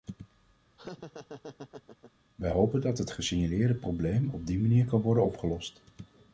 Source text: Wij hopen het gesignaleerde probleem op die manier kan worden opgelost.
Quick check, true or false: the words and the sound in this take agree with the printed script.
false